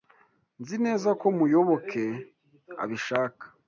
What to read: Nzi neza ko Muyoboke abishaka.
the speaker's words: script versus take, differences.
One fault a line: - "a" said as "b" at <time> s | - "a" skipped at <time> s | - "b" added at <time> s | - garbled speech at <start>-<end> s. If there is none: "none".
none